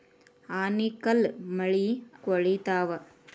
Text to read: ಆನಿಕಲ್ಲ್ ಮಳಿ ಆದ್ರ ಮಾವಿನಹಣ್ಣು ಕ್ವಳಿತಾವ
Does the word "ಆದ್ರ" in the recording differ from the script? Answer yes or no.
yes